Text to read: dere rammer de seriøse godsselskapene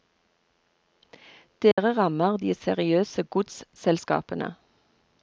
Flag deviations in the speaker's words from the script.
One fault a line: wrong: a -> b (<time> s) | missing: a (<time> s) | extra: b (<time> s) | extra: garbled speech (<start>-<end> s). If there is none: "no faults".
no faults